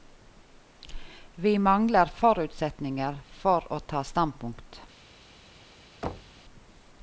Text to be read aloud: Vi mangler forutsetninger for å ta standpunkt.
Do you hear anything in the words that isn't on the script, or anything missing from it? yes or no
no